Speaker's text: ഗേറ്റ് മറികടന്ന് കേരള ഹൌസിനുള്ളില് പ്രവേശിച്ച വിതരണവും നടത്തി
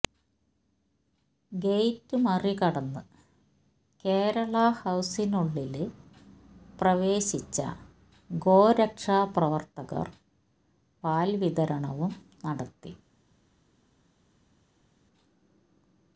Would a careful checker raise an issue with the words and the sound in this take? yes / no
yes